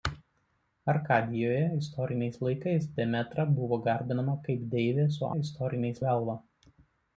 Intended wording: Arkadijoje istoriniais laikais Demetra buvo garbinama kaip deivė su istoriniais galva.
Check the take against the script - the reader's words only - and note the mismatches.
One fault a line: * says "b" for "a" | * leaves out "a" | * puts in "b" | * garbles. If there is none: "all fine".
all fine